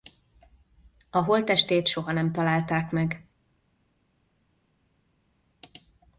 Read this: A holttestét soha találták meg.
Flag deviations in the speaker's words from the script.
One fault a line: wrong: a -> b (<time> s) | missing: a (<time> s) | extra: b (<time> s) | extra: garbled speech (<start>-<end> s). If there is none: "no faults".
extra: nem (2.1 s)